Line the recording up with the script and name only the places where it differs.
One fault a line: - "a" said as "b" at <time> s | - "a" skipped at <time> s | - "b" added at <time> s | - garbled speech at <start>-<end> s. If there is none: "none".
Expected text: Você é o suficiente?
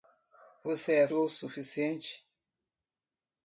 none